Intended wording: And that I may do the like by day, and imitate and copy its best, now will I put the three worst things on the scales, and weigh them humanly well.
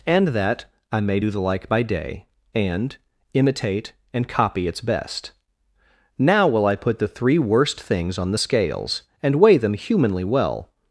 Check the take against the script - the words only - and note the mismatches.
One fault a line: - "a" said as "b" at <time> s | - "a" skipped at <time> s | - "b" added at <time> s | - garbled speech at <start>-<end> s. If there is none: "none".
none